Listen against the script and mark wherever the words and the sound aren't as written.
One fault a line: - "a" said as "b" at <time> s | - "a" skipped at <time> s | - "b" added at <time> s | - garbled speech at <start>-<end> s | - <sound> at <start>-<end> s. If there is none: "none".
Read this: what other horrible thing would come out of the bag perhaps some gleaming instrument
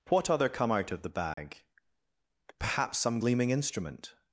- "horrible thing would" skipped at 0.5 s
- dropout at 1.3-1.4 s